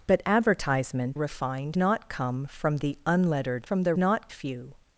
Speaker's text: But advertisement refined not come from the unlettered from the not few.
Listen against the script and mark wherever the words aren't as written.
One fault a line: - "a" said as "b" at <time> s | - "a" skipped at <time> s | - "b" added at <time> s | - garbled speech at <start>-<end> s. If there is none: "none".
none